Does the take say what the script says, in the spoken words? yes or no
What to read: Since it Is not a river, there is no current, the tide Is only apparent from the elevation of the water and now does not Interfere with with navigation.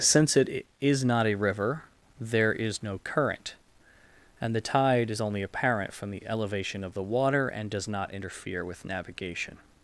no